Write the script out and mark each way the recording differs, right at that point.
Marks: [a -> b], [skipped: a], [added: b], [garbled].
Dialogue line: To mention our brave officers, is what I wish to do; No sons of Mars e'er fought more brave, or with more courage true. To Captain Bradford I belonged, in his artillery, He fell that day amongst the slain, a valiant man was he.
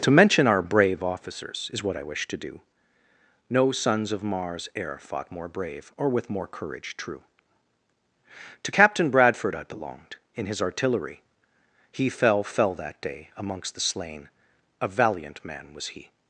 To mention our brave officers, is what I wish to do; No sons of Mars e'er fought more brave, or with more courage true. To Captain Bradford I belonged, in his artillery, He fell [added: fell] that day amongst the slain, a valiant man was he.